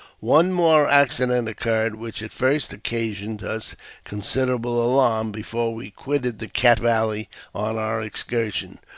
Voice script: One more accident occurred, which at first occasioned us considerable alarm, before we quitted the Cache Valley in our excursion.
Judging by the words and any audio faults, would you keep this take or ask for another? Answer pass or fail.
fail